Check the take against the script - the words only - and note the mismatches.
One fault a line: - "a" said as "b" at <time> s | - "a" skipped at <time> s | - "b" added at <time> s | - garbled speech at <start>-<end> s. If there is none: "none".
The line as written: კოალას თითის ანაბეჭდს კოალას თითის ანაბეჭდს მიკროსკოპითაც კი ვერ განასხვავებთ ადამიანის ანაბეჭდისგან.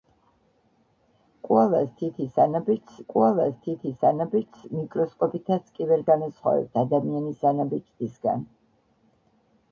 none